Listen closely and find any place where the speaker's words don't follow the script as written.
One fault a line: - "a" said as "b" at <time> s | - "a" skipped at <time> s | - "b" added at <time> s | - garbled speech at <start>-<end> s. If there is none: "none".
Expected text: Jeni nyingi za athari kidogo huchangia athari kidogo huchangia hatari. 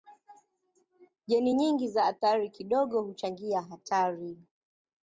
- "athari kidogo huchangia" skipped at 3.6 s